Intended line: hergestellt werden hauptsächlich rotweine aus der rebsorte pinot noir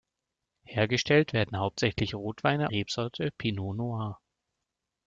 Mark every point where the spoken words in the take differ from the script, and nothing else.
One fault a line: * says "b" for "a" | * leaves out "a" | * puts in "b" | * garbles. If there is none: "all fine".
* leaves out "aus der"